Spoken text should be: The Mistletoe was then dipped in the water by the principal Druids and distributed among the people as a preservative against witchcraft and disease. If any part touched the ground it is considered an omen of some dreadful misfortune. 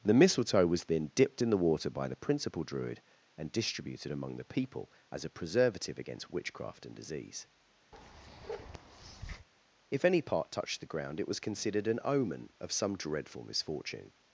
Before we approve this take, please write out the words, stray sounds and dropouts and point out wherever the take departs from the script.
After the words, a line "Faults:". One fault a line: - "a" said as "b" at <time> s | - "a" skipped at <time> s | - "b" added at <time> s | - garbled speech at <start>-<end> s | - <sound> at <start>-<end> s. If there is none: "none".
The Mistletoe was then dipped in the water by the principal Druid and distributed among the people as a preservative against witchcraft and disease. If any part touched the ground it was considered an omen of some dreadful misfortune.
Faults:
- "Druids" said as "Druid" at 2.6 s
- bark at 7.9-9.5 s
- "is" said as "was" at 11.3 s